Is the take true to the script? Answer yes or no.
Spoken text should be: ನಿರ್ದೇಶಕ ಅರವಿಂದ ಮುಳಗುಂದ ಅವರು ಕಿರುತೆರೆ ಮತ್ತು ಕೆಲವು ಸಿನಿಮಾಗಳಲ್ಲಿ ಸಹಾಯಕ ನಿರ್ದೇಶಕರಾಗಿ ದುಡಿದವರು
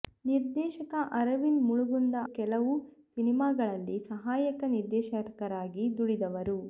no